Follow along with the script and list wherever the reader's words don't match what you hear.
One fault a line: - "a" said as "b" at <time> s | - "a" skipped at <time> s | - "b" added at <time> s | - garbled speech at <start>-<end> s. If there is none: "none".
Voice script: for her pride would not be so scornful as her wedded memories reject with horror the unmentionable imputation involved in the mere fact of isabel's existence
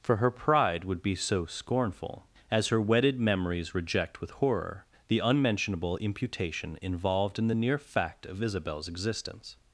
- "not" skipped at 1.0 s
- "mere" said as "near" at 7.5 s